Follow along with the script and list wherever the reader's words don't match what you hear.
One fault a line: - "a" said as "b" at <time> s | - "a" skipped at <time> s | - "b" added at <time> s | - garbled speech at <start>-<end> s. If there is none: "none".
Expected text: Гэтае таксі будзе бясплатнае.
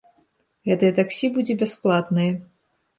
none